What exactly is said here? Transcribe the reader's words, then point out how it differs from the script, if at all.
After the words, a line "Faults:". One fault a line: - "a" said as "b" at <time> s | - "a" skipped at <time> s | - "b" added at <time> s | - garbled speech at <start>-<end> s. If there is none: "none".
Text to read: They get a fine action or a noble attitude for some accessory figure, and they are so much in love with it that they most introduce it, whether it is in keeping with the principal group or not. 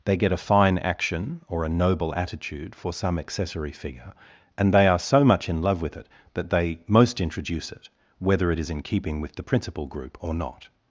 They get a fine action or a noble attitude for some accessory figure, and they are so much in love with it that they most introduce it, whether it is in keeping with the principal group or not.
Faults:
none